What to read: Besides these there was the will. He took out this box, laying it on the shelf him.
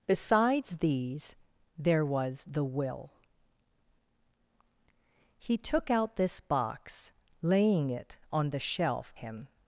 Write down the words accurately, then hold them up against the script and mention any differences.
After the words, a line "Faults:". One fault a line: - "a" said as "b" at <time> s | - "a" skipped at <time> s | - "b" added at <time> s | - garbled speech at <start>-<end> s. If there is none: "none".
Besides these there was the will. He took out this box, laying it on the shelf him.
Faults:
none